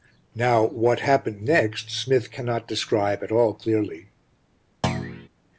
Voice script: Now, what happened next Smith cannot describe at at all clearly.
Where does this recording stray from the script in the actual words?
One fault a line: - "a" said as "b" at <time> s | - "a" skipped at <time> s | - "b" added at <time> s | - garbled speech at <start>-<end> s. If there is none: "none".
- "at" skipped at 3.3 s